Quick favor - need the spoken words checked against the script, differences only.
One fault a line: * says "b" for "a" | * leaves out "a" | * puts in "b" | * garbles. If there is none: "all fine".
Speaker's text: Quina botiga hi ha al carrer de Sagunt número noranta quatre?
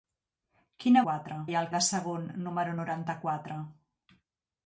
* says "quatre" for "botiga"
* leaves out "carrer"